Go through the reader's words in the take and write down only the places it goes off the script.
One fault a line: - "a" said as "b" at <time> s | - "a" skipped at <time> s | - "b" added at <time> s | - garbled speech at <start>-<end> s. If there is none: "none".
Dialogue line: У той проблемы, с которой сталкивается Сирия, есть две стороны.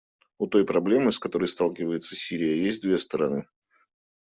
none